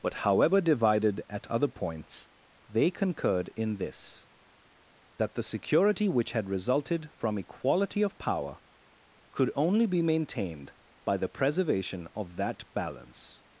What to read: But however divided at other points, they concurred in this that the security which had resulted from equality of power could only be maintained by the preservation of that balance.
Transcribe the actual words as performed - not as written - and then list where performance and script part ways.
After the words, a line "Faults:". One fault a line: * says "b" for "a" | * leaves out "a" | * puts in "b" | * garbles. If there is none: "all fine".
But however divided at other points, they concurred in this that the security which had resulted from equality of power could only be maintained by the preservation of that balance.
Faults:
all fine